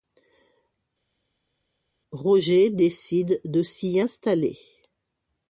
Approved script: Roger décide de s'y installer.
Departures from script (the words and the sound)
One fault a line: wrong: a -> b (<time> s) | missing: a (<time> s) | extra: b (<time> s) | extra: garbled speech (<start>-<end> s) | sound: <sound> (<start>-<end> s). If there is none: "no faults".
no faults